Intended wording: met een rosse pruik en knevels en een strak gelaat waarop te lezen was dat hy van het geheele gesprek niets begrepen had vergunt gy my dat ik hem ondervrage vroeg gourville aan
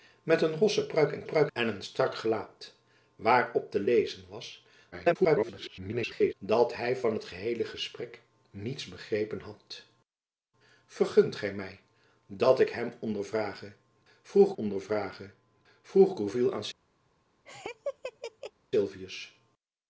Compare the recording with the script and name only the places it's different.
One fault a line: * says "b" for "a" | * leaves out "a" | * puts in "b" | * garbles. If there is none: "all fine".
* says "pruik" for "knevels"
* garbles
* puts in "ondervrage vroeg"